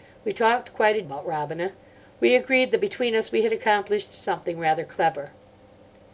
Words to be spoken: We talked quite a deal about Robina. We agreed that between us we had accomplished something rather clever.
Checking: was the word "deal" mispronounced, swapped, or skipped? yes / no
yes